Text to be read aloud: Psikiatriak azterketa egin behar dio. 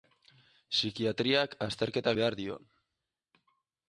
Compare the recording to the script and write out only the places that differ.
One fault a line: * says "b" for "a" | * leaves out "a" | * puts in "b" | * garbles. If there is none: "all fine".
* leaves out "egin"